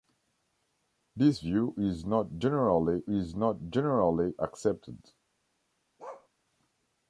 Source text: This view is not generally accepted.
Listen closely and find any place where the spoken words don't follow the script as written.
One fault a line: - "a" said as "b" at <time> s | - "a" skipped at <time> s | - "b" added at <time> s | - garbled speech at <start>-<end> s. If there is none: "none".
- "is not generally" added at 3.1 s